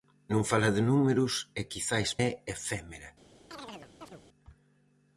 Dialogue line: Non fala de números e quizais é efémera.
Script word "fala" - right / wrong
right